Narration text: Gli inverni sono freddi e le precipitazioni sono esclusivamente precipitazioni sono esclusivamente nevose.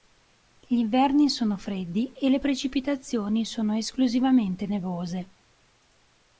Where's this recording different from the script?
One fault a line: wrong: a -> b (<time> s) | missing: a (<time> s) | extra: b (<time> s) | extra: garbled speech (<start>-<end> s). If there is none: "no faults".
missing: precipitazioni sono esclusivamente (4.6 s)